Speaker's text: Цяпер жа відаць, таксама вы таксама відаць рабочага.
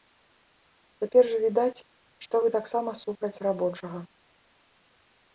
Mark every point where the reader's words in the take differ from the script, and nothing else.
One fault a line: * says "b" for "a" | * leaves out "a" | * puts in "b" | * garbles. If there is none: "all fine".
* says "што" for "таксама"
* says "супраць" for "відаць"